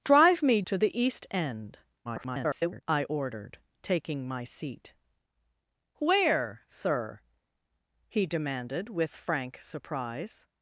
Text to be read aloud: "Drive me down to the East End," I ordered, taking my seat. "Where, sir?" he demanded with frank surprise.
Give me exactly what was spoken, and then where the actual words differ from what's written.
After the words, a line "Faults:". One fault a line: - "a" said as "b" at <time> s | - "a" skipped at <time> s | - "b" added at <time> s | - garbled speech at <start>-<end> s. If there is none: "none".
"Drive me to the East End," [garbled] I ordered, taking my seat. "Where, sir?" he demanded with frank surprise.
Faults:
- "down" skipped at 0.6 s
- garbled speech at 2.0-2.8 s